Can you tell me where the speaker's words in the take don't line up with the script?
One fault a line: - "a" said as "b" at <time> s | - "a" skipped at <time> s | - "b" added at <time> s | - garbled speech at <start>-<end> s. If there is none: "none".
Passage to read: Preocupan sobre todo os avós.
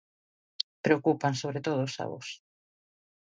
none